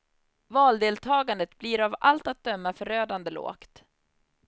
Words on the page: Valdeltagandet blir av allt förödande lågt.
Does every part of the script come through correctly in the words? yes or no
no